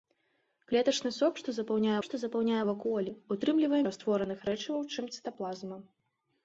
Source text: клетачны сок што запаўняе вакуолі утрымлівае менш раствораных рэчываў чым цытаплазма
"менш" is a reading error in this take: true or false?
true